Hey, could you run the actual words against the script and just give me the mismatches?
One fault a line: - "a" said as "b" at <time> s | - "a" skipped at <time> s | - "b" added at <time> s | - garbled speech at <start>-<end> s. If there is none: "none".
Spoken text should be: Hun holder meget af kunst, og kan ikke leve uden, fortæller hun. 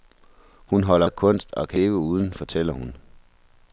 - "meget" skipped at 1.1 s
- "ikke" skipped at 1.8 s